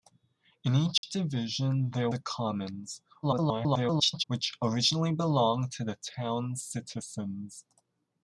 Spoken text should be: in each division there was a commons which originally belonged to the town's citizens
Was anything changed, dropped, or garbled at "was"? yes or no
yes